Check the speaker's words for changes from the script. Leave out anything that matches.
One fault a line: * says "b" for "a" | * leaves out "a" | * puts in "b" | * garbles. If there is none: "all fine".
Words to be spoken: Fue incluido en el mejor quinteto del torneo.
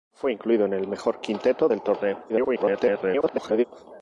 * garbles